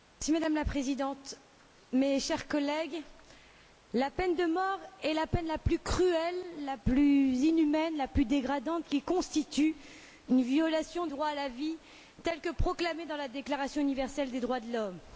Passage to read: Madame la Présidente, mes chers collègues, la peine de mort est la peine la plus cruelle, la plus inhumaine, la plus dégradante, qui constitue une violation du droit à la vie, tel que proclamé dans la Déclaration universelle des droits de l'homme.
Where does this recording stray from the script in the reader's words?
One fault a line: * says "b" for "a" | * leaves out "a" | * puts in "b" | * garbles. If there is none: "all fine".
* leaves out "du"